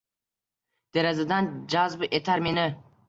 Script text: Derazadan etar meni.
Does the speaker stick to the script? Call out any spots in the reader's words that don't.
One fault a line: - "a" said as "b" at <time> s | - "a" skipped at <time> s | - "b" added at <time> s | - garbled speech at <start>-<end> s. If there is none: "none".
- "jazb" added at 1.7 s